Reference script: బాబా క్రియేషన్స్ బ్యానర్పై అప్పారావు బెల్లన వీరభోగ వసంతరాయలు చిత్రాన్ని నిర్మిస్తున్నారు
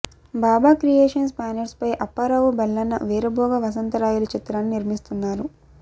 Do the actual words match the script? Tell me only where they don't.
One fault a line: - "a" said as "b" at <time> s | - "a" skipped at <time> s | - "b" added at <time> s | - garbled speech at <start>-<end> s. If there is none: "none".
none